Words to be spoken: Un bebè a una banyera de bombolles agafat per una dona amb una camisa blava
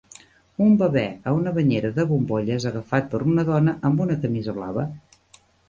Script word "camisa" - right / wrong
right